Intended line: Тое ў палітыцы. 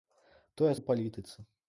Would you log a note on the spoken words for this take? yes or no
no